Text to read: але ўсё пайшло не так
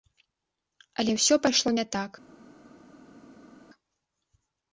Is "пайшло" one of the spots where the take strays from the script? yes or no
no